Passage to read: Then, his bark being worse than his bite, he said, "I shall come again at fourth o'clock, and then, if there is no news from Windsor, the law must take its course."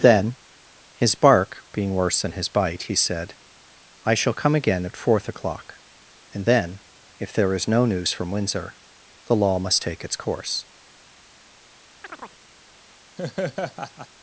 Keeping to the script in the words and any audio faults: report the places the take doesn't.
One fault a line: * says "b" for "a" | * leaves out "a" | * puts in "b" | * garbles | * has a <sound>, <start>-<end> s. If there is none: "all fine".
* has a chirp, 12.0-12.4 s
* has a laugh, 13.2-14.1 s